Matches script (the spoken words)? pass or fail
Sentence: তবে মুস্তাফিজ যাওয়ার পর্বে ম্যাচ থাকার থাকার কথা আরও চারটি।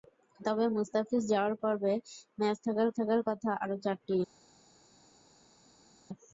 pass